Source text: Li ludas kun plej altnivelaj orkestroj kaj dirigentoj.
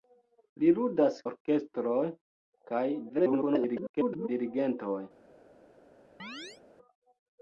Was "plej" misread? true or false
true